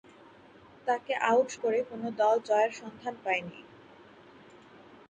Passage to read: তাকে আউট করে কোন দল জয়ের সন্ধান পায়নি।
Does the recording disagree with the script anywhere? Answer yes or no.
no